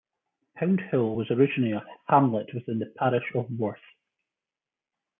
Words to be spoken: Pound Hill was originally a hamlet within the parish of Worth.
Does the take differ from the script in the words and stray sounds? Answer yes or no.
no